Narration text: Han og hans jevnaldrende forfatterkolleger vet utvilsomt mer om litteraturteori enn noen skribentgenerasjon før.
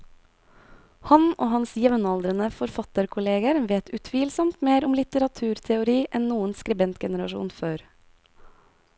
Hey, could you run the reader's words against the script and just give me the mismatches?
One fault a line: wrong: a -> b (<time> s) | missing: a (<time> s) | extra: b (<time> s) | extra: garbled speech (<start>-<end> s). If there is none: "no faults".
no faults